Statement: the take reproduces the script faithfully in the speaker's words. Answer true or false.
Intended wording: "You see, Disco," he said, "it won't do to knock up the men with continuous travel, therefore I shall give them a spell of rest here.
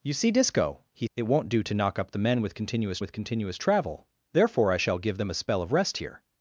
false